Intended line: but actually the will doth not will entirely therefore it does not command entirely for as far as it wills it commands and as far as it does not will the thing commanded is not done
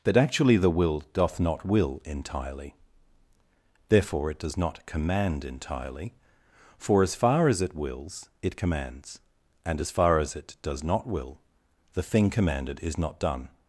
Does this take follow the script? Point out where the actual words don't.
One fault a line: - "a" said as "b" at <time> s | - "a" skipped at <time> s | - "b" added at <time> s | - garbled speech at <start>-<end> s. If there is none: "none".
none